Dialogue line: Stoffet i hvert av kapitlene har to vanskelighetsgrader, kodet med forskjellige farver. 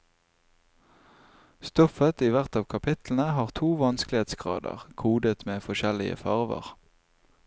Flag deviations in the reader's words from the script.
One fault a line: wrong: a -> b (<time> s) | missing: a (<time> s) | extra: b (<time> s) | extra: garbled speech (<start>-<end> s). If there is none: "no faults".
no faults